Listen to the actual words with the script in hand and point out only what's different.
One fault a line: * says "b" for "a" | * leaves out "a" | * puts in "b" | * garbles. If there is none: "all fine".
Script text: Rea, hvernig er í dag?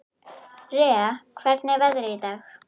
* puts in "veðrið"